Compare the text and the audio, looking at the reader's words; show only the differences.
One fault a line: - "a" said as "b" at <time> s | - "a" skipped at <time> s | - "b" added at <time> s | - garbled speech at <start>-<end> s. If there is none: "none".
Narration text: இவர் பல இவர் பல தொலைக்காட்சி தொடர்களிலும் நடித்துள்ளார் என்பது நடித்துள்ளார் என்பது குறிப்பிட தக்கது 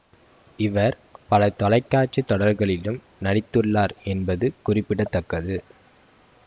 - "இவர் பல" skipped at 1.5 s
- "நடித்துள்ளார் என்பது" skipped at 4.5 s